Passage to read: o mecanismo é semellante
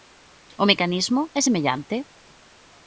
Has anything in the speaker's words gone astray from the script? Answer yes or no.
no